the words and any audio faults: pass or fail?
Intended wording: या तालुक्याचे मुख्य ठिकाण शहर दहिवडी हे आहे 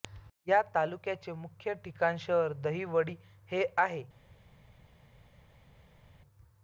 pass